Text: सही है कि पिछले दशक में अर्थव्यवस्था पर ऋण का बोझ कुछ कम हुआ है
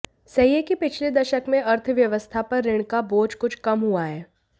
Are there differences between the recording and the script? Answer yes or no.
no